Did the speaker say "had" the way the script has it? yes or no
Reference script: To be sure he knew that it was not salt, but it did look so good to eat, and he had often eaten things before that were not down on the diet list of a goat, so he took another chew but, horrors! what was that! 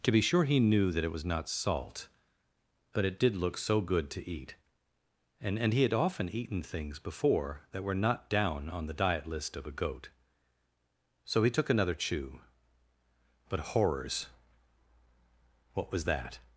yes